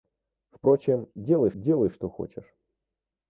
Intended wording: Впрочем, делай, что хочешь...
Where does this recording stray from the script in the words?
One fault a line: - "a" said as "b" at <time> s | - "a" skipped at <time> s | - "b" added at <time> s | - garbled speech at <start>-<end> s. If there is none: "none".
- "делай" added at 1.5 s